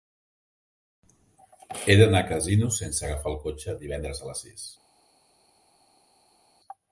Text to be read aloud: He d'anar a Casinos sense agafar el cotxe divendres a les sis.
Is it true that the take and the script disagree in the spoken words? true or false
false